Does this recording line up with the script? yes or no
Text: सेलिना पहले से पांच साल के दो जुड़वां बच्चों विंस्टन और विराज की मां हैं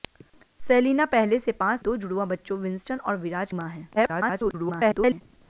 no